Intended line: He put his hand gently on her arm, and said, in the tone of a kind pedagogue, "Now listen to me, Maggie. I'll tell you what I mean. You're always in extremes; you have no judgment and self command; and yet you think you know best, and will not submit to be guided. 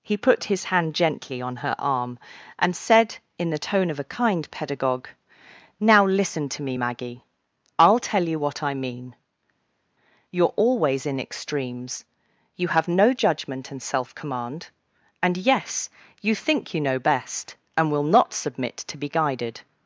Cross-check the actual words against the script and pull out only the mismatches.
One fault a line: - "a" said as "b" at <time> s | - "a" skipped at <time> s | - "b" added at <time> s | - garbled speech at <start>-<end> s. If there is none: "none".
- "yet" said as "yes" at 15.4 s